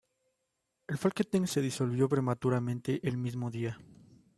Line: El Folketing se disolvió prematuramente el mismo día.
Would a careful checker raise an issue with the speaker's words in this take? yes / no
no